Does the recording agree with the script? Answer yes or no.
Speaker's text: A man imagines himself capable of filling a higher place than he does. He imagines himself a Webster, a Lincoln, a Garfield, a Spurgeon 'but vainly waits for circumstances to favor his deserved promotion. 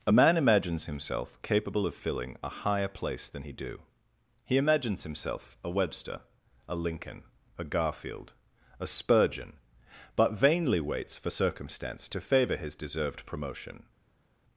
no